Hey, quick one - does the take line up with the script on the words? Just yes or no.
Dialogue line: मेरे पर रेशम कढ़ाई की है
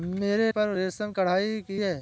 yes